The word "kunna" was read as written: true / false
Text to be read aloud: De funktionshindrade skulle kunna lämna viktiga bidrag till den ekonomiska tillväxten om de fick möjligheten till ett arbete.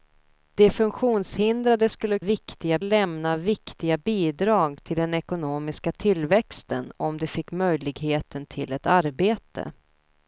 false